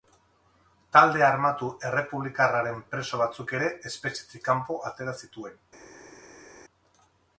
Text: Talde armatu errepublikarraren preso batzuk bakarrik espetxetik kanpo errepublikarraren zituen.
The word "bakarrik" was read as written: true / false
false